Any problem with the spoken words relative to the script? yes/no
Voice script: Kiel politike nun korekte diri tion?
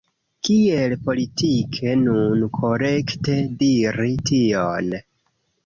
no